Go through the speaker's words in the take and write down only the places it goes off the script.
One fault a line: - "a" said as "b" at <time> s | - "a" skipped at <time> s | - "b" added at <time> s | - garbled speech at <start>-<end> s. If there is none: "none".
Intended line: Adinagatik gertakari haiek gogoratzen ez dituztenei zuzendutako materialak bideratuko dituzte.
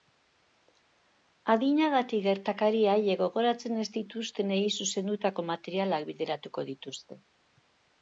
none